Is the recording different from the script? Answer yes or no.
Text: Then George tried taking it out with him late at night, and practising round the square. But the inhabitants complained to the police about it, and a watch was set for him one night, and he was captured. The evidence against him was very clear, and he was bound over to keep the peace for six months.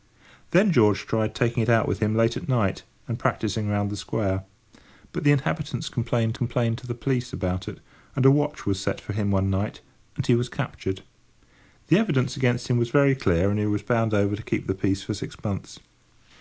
yes